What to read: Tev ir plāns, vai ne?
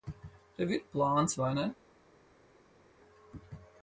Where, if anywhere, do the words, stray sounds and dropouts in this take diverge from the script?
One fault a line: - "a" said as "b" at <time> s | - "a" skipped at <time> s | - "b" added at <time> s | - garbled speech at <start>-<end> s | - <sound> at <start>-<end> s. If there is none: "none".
none